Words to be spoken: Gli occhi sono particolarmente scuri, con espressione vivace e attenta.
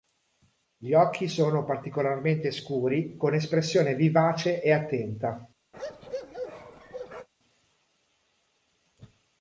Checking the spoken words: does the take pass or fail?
pass